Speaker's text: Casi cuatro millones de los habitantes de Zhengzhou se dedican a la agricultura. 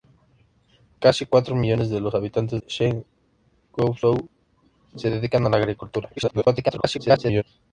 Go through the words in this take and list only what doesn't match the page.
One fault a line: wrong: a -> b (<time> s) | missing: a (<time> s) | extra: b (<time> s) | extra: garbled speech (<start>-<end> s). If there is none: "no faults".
missing: de (2.6 s)
extra: garbled speech (6.2-7.4 s)